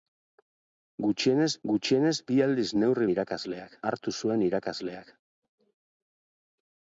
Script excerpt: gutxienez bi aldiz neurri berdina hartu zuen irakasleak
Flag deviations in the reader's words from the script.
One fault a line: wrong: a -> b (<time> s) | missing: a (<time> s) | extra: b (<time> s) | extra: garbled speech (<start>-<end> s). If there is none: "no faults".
extra: gutxienez (1.7 s)
wrong: berdina -> irakasleak (3.1 s)